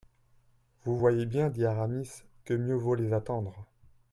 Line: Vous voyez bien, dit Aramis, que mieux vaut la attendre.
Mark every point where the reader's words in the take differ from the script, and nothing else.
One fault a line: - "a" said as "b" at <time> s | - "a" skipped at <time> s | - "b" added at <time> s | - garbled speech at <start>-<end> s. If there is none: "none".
- "la" said as "les" at 2.9 s